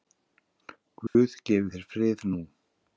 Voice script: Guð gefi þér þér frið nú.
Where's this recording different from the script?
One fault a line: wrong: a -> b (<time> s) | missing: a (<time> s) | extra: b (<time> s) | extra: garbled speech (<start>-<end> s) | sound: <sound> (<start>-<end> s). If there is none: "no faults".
sound: dropout (1.1-1.2 s)
missing: þér (1.9 s)